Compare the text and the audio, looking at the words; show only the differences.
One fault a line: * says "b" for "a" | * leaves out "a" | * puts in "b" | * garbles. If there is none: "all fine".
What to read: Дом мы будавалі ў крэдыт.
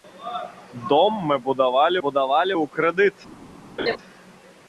* puts in "будавалі"